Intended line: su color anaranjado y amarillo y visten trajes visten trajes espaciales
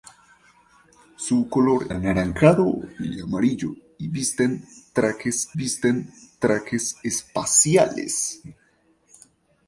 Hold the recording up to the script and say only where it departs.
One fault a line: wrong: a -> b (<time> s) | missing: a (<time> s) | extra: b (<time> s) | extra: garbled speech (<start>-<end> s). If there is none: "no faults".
no faults